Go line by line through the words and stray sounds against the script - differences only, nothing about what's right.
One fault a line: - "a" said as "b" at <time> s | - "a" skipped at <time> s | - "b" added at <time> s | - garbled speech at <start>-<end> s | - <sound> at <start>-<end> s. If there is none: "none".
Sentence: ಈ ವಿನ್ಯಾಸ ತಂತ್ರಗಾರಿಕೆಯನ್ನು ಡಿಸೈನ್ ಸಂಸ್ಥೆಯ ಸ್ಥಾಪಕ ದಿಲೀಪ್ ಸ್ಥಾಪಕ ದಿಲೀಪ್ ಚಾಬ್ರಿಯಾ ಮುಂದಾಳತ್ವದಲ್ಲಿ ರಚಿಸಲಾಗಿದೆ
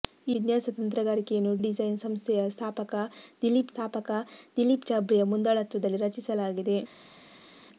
none